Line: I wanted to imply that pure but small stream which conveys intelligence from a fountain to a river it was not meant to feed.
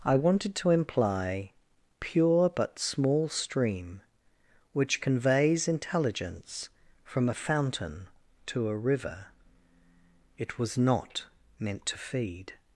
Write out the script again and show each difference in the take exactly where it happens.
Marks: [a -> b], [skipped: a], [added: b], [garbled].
I wanted to imply [skipped: that] pure but small stream which conveys intelligence from a fountain to a river it was not meant to feed.